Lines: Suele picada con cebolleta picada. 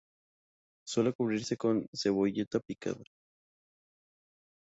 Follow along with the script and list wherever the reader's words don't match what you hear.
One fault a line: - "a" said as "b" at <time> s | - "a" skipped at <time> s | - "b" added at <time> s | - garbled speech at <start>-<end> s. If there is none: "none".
- "picada" said as "cubrirse" at 1.1 s